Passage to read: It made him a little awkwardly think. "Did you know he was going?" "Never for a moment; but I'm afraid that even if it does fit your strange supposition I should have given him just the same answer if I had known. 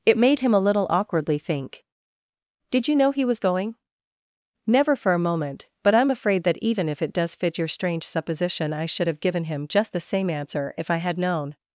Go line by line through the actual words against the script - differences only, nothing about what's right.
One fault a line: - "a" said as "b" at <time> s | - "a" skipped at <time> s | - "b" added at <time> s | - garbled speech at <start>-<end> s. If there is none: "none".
none